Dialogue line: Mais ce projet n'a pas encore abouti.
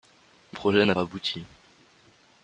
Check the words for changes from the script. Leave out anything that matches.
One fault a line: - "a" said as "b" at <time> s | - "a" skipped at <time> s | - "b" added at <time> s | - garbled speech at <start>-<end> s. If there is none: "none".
- "ce" skipped at 0.6 s
- "pas encore" skipped at 1.0 s